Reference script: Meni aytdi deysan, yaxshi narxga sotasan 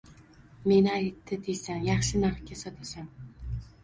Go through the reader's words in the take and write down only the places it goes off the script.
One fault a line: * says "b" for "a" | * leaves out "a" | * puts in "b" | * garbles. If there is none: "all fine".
all fine